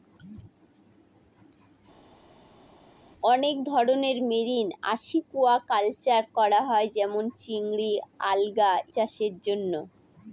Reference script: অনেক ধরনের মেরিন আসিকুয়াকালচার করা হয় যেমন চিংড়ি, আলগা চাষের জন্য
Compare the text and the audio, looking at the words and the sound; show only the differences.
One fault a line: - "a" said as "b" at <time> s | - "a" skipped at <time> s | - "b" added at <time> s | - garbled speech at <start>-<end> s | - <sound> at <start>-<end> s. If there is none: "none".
none